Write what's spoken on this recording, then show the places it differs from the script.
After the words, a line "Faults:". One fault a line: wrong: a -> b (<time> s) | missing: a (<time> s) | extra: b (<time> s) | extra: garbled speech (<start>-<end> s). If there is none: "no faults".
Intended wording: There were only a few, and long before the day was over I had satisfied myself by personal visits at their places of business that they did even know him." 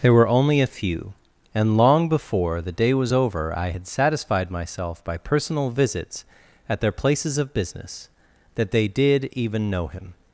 There were only a few, and long before the day was over I had satisfied myself by personal visits at their places of business that they did even know him."
Faults:
no faults